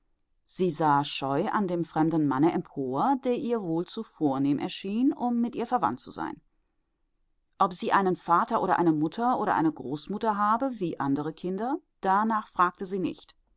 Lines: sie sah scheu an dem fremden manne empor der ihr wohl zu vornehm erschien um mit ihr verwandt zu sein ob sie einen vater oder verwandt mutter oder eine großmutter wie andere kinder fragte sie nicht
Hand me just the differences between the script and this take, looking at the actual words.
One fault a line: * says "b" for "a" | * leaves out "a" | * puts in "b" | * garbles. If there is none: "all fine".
* says "eine" for "verwandt"
* puts in "habe"
* puts in "danach"